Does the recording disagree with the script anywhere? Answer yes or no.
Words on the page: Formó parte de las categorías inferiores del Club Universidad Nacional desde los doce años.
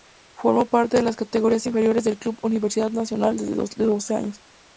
no